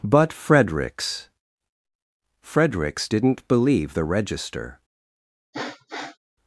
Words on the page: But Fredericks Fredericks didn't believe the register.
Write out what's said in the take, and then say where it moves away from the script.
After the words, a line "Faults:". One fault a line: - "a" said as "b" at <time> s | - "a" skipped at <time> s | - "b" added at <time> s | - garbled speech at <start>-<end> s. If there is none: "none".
But Fredericks Fredericks didn't believe the register.
Faults:
none